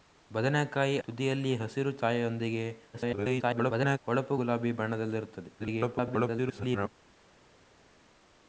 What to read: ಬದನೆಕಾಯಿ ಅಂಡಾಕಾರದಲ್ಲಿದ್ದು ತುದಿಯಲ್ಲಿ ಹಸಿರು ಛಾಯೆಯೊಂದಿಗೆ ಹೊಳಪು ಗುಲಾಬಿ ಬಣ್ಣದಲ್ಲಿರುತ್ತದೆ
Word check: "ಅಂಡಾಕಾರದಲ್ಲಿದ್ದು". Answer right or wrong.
wrong